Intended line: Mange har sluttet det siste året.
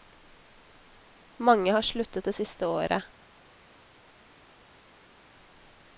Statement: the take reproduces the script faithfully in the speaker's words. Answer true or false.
true